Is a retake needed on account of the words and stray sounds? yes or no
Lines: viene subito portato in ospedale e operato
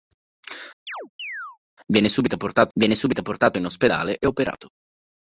yes